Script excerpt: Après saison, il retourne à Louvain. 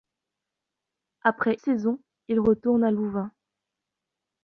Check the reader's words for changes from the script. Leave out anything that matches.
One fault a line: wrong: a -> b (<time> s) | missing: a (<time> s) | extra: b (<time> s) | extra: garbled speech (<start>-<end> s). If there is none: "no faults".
no faults